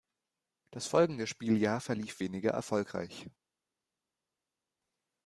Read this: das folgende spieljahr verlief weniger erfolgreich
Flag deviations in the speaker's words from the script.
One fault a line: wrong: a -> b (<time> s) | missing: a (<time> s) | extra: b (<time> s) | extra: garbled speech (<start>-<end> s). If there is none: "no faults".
no faults